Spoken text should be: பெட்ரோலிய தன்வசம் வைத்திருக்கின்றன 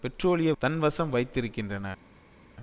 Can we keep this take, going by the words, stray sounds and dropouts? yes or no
yes